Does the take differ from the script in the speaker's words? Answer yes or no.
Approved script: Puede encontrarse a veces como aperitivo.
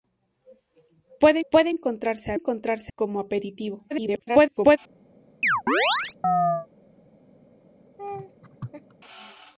yes